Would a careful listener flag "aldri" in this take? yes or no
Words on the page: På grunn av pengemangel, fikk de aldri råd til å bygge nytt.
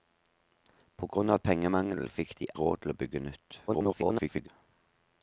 yes